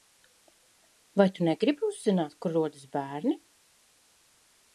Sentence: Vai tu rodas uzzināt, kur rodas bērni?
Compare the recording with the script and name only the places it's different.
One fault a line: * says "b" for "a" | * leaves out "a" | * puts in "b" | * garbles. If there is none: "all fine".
* says "negribi" for "rodas"